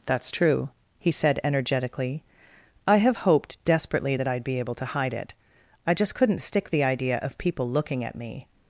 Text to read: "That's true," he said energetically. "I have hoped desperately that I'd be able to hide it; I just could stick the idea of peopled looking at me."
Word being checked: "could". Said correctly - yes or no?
no